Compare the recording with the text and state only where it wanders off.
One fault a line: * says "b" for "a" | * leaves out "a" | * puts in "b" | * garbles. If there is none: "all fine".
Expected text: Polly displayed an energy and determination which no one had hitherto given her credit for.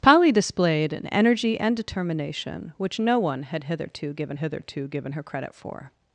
* puts in "hitherto given"